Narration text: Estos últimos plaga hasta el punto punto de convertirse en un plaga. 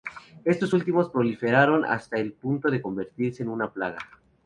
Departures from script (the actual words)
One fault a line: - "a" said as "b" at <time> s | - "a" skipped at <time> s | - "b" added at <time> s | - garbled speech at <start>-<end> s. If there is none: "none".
- "plaga" said as "proliferaron" at 1.1 s
- "punto" skipped at 2.7 s
- "un" said as "una" at 3.5 s